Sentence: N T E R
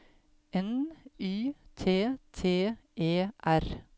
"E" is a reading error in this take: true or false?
false